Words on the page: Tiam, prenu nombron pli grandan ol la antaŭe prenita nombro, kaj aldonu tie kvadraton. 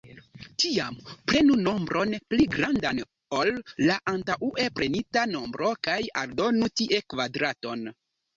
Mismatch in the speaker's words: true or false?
false